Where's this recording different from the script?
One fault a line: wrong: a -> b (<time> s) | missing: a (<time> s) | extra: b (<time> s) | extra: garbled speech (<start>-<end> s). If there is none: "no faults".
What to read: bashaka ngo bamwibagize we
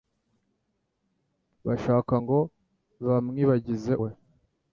no faults